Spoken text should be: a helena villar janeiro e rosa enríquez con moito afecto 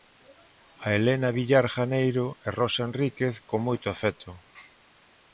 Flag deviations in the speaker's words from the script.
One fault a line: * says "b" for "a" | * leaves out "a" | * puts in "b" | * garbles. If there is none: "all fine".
all fine